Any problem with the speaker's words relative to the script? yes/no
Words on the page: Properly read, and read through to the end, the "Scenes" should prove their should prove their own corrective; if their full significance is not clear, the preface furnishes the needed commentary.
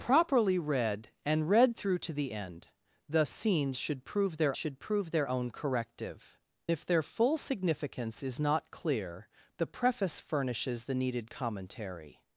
no